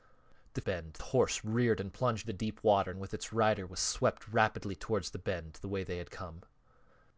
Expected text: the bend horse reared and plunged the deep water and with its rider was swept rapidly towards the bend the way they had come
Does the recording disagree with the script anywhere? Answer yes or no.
no